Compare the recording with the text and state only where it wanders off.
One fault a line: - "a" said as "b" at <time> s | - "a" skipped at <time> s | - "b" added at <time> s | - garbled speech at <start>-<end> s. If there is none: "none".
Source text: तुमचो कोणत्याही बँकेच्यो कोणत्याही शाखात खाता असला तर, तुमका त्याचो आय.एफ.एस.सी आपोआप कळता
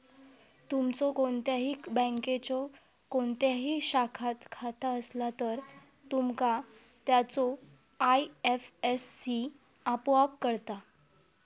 none